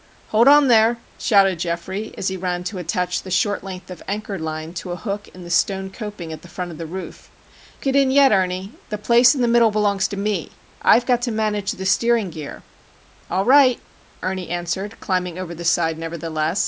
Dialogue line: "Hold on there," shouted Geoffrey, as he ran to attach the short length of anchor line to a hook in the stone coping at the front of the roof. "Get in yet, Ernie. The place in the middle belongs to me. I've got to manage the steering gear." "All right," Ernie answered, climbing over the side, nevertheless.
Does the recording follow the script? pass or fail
pass